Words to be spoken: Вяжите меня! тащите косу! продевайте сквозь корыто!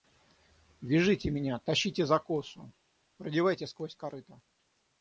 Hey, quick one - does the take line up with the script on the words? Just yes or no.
no